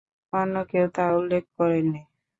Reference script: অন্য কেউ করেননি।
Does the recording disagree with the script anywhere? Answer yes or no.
yes